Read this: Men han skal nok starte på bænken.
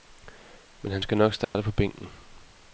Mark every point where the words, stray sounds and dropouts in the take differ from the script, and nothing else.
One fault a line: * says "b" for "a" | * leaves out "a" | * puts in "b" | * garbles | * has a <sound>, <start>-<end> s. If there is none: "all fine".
* has a dropout, 1.4-1.5 s